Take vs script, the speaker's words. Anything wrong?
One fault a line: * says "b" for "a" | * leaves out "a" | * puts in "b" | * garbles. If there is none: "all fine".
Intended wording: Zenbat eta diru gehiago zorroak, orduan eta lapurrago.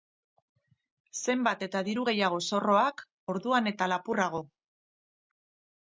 all fine